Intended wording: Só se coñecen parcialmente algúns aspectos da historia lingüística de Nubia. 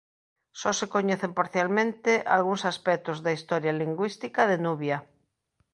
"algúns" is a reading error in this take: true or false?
false